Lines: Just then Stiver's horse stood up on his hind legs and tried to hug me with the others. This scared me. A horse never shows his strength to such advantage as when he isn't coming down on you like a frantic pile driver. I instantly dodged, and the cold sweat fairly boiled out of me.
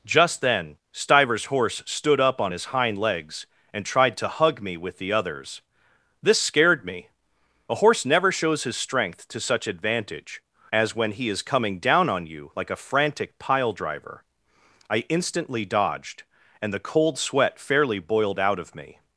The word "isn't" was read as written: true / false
false